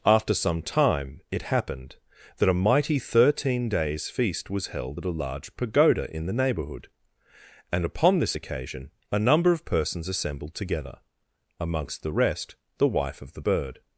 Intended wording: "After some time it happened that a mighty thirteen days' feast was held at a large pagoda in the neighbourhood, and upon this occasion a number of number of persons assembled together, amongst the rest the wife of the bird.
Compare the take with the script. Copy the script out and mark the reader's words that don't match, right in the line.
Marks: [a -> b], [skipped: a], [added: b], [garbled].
"After some time it happened that a mighty thirteen days' feast was held at a large pagoda in the neighbourhood, and upon this occasion a number of [skipped: number of] persons assembled together, amongst the rest the wife of the bird.